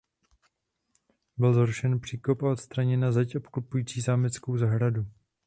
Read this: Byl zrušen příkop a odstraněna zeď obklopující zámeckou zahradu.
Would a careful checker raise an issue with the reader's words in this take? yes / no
no